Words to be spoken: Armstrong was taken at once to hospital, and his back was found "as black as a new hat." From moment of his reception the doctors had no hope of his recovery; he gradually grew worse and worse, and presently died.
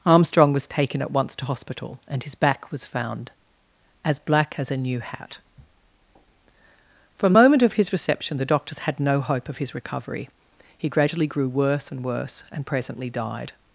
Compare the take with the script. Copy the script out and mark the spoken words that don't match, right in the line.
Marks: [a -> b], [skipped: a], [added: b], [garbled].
Armstrong was taken at once to hospital, and his back was found "as black as a new hat." From moment of his reception the doctors had no hope of his recovery; he gradually grew worse and worse, and presently died.